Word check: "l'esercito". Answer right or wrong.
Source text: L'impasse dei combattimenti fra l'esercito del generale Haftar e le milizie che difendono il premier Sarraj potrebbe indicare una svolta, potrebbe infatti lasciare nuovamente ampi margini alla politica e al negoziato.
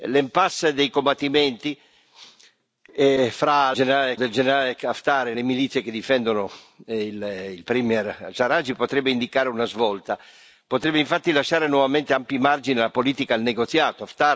wrong